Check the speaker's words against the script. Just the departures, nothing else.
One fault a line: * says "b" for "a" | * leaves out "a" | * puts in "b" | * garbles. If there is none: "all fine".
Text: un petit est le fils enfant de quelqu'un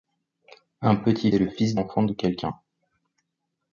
all fine